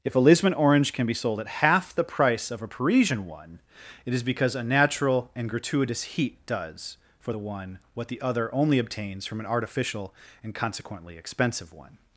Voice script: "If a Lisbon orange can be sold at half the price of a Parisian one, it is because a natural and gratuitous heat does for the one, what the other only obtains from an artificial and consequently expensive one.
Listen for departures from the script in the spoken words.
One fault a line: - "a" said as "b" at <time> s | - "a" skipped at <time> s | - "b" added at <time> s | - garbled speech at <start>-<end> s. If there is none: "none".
none